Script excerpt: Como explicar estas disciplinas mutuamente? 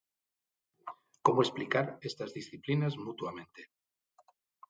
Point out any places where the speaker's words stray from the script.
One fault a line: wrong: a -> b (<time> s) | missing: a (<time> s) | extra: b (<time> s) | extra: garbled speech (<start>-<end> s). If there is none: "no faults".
no faults